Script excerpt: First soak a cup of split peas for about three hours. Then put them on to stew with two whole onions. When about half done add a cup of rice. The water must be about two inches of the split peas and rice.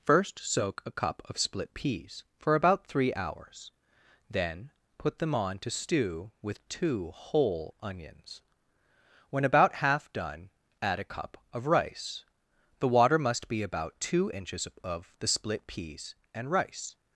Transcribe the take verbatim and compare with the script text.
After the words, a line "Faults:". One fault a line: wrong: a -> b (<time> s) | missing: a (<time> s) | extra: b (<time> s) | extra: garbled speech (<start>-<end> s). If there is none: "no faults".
First soak a cup of split peas for about three hours. Then put them on to stew with two whole onions. When about half done add a cup of rice. The water must be about two inches of the split peas and rice.
Faults:
no faults